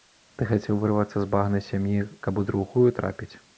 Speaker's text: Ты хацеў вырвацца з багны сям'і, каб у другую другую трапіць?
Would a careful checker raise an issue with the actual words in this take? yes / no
yes